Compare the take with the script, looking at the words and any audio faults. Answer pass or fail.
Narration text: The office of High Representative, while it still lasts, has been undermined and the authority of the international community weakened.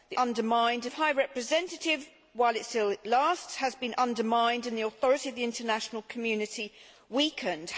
fail